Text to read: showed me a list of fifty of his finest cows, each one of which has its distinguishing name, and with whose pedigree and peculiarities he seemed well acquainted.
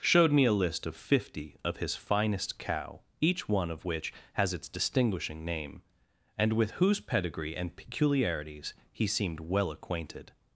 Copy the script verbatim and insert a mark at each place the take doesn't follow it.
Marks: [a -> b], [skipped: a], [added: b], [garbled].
showed me a list of fifty of his finest [cows, -> cow] each one of which has its distinguishing name, and with whose pedigree and peculiarities he seemed well acquainted.